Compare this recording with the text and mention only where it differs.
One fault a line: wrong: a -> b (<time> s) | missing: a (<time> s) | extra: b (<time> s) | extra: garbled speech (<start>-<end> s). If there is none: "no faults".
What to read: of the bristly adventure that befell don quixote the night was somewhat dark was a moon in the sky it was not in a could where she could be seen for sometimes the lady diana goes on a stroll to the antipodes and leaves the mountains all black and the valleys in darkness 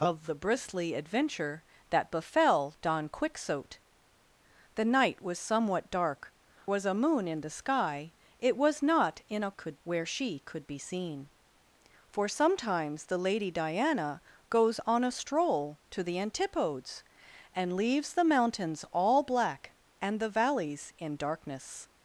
no faults